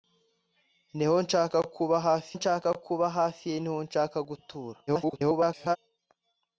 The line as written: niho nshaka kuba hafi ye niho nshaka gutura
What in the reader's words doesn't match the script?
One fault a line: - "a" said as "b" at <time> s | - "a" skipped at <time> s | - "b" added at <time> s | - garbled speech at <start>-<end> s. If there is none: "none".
- "nshaka kuba hafi" added at 2.4 s
- garbled speech at 4.9-5.8 s